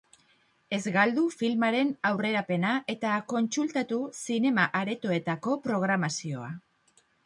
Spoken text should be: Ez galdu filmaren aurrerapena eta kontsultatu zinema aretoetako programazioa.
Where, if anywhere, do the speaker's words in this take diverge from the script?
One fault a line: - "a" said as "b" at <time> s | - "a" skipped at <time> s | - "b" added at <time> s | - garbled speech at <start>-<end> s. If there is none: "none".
none